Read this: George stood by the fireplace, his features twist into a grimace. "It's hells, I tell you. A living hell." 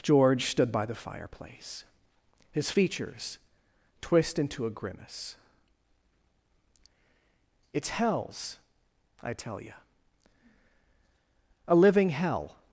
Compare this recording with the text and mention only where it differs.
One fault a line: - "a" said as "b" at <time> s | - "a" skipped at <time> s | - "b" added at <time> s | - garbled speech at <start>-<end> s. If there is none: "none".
none